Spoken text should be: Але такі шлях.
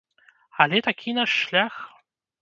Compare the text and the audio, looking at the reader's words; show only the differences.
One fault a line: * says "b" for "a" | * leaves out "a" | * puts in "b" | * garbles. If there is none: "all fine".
* puts in "наш"